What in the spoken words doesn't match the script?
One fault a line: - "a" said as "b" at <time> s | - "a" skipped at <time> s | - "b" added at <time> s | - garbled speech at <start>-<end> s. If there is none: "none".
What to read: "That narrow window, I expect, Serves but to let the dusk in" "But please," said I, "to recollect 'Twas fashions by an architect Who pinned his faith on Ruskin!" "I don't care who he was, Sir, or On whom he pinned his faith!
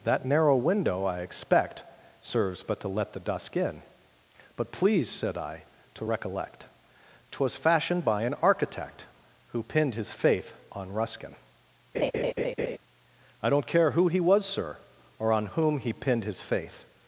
- "fashions" said as "fashioned" at 7.6 s